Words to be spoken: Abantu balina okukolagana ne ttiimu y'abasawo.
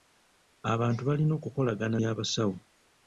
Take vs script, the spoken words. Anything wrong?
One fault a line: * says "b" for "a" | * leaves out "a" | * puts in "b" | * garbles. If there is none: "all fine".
* leaves out "ne ttiimu"